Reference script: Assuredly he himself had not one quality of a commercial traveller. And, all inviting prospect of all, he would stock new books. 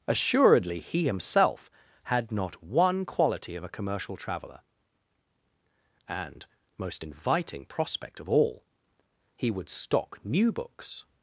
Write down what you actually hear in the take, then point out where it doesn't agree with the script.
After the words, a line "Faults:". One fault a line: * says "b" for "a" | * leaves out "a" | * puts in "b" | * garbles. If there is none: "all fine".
Assuredly he himself had not one quality of a commercial traveller. And, most inviting prospect of all, he would stock new books.
Faults:
* says "most" for "all"